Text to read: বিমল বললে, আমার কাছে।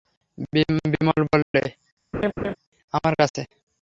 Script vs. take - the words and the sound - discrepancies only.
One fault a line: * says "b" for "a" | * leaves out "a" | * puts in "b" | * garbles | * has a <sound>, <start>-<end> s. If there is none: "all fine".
* has a dropout, 1.4-1.5 s
* has a laugh, 2.1-2.6 s